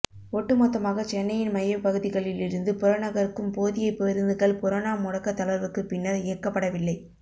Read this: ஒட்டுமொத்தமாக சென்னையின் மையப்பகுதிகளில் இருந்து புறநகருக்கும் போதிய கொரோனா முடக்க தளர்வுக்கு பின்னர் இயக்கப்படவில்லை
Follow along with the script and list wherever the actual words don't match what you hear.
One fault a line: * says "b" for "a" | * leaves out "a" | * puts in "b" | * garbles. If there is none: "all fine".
* puts in "பேருந்துகள்"